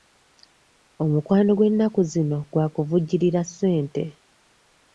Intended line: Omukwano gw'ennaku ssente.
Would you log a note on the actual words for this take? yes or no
yes